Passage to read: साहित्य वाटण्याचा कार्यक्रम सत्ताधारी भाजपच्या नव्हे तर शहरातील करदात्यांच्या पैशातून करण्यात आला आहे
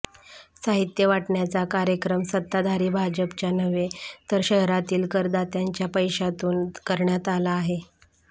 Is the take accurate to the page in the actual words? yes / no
yes